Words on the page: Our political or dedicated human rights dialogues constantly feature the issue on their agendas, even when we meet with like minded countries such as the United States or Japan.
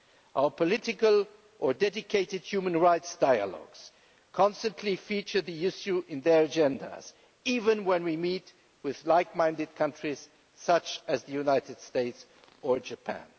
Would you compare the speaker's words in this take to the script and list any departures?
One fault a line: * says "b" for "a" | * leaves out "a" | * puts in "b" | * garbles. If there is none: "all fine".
all fine